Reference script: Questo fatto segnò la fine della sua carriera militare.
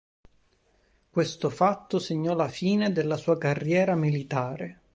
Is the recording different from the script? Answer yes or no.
no